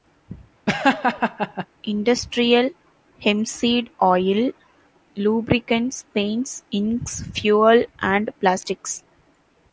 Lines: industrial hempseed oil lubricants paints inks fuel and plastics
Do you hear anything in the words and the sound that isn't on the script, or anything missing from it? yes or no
yes